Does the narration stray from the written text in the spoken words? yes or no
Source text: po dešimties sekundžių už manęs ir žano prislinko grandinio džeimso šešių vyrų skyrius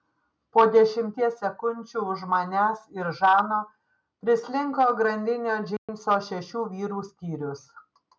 no